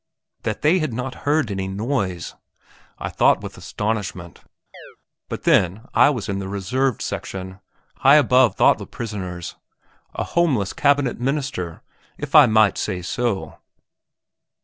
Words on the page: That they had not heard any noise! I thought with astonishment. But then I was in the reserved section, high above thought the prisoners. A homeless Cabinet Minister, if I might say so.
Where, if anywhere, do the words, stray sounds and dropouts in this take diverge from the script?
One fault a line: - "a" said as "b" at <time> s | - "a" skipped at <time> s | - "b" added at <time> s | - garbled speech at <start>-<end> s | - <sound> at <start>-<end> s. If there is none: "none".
- chirp at 4.7-5.0 s